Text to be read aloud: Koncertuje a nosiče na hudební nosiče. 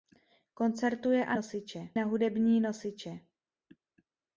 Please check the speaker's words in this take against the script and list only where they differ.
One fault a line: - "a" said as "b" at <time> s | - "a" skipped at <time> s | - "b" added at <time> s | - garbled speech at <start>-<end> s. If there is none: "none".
none